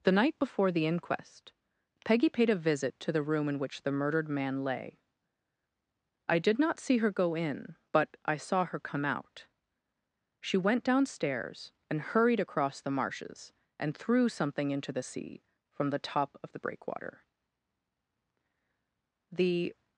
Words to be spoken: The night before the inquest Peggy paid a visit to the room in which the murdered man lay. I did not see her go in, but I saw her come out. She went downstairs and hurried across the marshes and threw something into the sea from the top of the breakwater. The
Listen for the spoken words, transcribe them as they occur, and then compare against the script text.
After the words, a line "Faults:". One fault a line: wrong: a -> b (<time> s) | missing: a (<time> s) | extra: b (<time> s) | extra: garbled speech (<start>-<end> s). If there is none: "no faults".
The night before the inquest Peggy paid a visit to the room in which the murdered man lay. I did not see her go in, but I saw her come out. She went downstairs and hurried across the marshes and threw something into the sea from the top of the breakwater. The
Faults:
no faults